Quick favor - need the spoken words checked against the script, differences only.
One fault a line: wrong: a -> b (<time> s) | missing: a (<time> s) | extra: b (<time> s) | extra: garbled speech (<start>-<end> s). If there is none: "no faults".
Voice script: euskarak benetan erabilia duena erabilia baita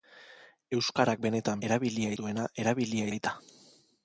no faults